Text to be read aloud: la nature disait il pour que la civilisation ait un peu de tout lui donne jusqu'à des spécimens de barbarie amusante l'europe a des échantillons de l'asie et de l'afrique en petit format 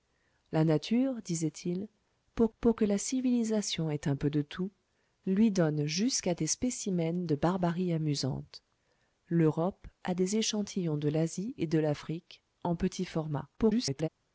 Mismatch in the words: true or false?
true